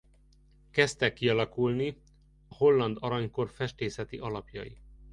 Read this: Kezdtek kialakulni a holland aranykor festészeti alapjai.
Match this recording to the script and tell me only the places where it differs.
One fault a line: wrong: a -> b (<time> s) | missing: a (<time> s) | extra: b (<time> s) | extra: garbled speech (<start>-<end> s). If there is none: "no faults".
missing: a (2.0 s)